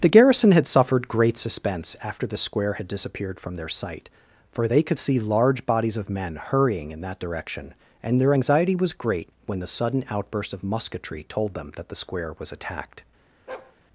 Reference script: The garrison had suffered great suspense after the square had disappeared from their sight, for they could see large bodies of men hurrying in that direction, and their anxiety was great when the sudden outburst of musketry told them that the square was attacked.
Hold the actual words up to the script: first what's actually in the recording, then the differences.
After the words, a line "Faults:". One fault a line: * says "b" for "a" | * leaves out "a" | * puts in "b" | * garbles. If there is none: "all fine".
The garrison had suffered great suspense after the square had disappeared from their sight, for they could see large bodies of men hurrying in that direction, and their anxiety was great when the sudden outburst of musketry told them that the square was attacked.
Faults:
all fine